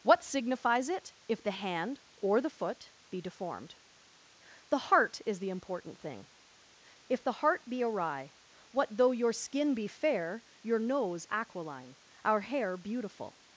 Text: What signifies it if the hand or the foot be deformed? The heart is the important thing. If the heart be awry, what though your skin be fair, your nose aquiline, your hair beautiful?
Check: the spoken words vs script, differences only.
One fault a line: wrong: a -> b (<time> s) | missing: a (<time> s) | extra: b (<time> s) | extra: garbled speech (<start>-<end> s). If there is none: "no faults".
wrong: your -> our (12.2 s)